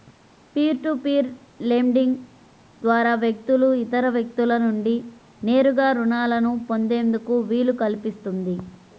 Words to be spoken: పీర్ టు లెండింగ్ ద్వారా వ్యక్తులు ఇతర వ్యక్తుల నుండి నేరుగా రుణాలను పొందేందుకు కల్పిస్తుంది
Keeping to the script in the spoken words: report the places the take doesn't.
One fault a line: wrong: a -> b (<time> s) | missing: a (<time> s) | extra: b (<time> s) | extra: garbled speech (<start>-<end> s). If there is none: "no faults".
extra: పీర్ (1.0 s)
extra: వీలు (7.5 s)